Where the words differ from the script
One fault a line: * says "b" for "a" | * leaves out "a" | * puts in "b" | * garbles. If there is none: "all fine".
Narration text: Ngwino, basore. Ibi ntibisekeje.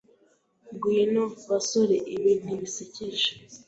all fine